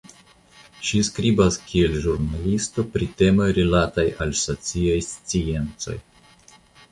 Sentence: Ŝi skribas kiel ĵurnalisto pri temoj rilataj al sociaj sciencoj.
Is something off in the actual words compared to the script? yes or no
no